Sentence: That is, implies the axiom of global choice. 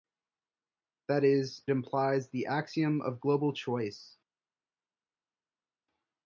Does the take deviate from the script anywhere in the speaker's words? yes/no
no